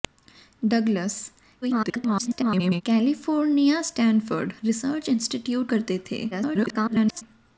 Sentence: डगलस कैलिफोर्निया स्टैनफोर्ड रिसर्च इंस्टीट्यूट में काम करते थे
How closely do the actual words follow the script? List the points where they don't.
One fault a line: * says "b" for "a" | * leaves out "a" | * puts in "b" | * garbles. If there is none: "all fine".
* garbles
* leaves out "में काम"
* garbles